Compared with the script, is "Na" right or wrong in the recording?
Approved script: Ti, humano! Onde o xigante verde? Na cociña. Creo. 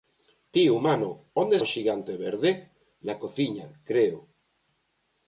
right